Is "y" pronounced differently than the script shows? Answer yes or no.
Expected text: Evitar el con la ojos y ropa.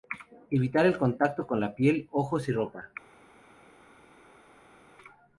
no